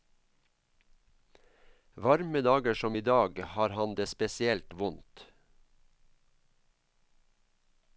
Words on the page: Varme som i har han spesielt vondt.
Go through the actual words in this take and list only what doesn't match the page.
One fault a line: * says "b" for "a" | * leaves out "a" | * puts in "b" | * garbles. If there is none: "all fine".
* puts in "dager"
* puts in "dag"
* puts in "det"